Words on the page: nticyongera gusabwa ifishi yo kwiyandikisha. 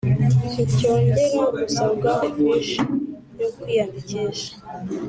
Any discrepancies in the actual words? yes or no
no